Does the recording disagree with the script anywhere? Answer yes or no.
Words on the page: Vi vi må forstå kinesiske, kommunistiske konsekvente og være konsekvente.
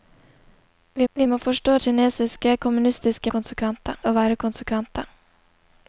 no